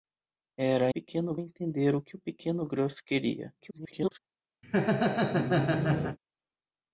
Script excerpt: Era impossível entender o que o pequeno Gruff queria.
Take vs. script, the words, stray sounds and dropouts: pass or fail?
fail